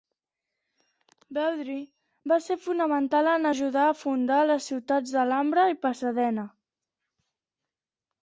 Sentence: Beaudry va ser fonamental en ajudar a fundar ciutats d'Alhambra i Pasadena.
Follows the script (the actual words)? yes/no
no